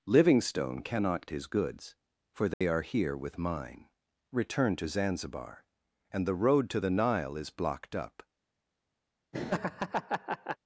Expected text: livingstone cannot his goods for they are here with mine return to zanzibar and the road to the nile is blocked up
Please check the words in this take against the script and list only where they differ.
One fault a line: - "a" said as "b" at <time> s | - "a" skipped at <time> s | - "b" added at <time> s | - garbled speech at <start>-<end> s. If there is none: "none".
none